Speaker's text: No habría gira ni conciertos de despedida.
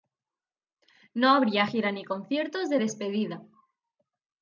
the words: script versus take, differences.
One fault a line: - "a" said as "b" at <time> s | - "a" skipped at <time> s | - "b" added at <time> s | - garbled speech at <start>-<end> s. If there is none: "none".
none